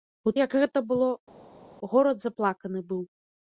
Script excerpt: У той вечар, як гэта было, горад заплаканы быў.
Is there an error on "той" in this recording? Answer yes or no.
yes